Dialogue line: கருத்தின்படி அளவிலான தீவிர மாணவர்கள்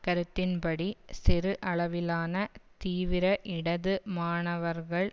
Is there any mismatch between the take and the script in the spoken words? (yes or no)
yes